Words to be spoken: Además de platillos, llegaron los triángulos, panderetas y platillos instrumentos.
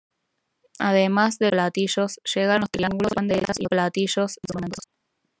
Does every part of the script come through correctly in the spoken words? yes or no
yes